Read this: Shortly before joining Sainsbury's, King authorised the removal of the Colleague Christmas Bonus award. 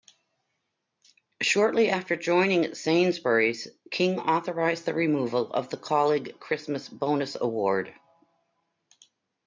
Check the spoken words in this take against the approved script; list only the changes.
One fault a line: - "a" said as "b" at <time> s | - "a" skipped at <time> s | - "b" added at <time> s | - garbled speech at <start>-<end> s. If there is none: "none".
- "before" said as "after" at 1.9 s